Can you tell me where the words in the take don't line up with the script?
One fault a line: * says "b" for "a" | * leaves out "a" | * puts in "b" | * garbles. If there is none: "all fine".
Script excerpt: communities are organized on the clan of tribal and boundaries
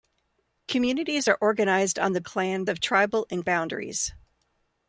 all fine